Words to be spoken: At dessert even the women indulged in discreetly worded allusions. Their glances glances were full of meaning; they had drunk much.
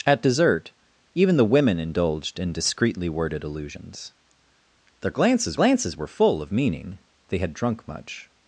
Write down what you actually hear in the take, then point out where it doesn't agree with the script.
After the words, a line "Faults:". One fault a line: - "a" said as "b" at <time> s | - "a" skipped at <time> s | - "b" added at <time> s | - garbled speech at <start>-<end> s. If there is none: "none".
At dessert even the women indulged in discreetly worded allusions. Their glances glances were full of meaning; they had drunk much.
Faults:
none